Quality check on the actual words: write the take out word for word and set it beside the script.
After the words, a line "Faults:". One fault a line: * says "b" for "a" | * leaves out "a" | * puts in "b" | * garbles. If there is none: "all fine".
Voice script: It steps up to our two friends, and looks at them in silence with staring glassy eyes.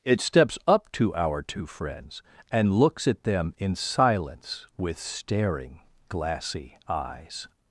It steps up to our two friends, and looks at them in silence with staring glassy eyes.
Faults:
all fine